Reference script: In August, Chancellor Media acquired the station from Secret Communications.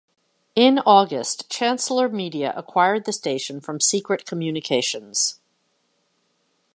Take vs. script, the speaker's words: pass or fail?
pass